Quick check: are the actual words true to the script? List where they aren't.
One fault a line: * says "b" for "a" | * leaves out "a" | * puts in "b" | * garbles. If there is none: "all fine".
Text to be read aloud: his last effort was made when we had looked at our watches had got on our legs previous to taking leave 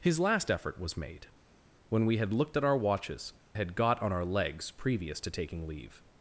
all fine